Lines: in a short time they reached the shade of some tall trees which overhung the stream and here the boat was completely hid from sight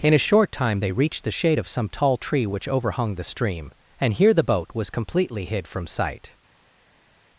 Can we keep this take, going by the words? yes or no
no